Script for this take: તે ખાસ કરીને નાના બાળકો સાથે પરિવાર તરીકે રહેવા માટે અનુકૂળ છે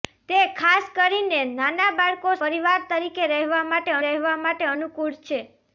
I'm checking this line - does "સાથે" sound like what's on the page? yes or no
no